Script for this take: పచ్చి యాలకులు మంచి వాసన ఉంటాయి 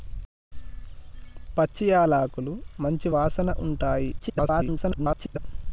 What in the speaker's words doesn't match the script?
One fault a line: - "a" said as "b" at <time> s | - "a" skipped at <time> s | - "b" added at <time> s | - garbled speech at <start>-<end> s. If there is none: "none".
- garbled speech at 4.2-5.4 s